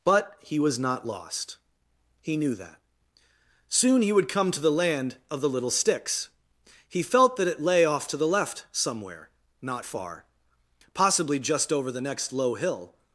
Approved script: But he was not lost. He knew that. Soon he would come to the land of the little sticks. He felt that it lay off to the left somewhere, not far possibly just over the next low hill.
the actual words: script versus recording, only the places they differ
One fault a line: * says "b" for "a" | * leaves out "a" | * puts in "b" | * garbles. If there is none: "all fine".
all fine